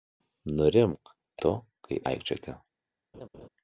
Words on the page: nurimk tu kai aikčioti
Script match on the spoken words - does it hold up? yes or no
yes